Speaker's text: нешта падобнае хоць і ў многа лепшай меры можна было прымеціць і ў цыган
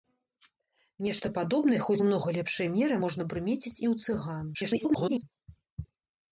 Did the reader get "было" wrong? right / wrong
wrong